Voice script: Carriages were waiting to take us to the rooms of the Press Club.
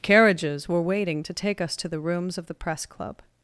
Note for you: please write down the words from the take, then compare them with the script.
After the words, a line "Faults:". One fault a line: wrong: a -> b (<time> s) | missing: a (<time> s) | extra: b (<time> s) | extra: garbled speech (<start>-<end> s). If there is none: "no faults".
Carriages were waiting to take us to the rooms of the Press Club.
Faults:
no faults